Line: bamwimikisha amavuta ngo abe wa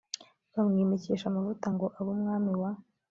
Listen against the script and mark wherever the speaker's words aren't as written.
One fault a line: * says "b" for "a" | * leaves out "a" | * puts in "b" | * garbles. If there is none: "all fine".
* puts in "umwami"